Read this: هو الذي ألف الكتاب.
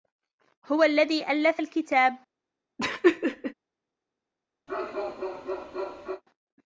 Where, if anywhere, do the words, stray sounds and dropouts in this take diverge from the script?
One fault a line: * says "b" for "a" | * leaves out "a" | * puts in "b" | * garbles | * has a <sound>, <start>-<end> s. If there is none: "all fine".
* has a laugh, 2.8-3.5 s
* has a bark, 4.7-6.2 s